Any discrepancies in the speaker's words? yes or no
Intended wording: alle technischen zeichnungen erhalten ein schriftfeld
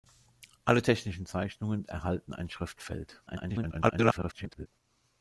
yes